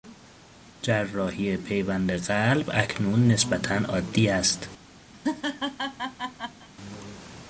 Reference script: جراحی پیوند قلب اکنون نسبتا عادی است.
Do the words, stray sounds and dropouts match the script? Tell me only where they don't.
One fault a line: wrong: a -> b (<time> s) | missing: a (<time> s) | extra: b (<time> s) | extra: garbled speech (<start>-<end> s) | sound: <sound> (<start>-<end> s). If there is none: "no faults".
sound: laugh (5.1-6.7 s)